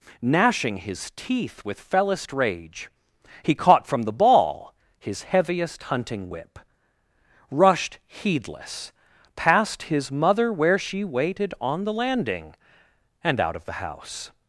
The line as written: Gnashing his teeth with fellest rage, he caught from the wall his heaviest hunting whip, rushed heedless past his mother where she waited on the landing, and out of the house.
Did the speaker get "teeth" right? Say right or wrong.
right